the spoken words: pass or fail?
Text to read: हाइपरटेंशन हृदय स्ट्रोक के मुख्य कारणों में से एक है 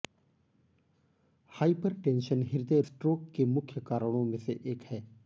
pass